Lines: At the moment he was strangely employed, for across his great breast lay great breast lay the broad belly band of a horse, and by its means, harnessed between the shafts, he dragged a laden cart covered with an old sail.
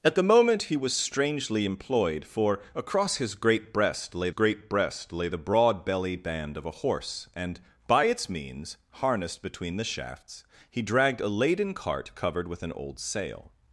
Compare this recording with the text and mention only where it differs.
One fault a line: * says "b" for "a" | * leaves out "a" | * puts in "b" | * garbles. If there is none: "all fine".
all fine